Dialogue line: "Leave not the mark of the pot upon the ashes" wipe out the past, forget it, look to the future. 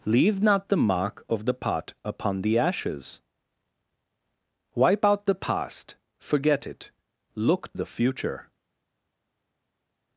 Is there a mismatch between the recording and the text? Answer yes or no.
yes